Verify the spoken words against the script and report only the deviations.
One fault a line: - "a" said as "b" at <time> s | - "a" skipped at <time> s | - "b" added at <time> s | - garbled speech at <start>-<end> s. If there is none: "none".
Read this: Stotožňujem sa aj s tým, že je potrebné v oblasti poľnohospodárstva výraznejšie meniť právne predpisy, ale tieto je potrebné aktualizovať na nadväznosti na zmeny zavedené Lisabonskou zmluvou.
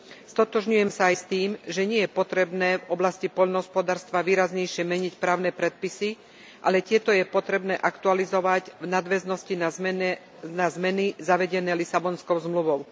- "nie" added at 1.9 s
- "na" said as "v" at 8.8 s